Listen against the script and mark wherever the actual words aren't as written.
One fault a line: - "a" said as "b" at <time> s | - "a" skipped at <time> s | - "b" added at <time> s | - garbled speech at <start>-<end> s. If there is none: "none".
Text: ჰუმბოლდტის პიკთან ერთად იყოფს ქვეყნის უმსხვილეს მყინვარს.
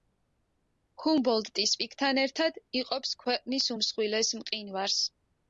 none